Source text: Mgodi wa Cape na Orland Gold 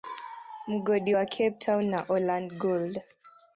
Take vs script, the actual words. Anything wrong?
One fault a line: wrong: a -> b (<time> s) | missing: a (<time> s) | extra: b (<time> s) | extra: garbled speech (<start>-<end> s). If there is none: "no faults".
extra: town (1.6 s)